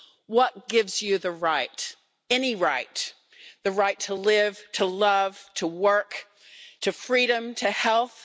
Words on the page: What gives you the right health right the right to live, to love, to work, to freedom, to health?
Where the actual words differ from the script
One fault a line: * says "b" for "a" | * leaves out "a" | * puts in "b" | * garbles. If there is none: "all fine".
* says "any" for "health"